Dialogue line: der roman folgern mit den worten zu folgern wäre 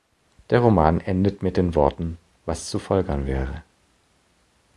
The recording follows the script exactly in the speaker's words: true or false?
false